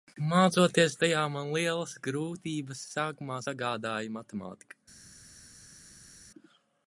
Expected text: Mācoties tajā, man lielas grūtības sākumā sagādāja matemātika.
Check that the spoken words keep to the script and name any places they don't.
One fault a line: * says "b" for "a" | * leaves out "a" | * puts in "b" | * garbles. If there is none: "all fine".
all fine